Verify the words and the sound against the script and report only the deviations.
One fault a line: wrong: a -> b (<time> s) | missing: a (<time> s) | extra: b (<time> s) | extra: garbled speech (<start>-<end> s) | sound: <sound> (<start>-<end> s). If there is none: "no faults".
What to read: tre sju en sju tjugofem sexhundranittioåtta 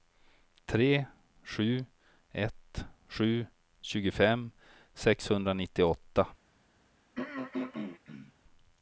wrong: en -> ett (2.3 s)
sound: throat clearing (7.2-8.3 s)